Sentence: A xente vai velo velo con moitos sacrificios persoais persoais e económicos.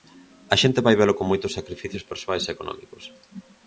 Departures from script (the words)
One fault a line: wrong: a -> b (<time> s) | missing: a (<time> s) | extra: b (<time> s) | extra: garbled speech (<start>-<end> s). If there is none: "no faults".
missing: velo (1.2 s)
missing: persoais (2.4 s)